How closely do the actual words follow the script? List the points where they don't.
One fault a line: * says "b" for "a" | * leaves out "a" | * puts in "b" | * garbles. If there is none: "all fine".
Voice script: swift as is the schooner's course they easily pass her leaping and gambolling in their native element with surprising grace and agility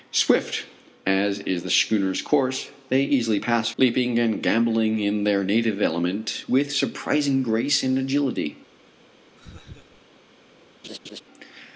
* leaves out "her"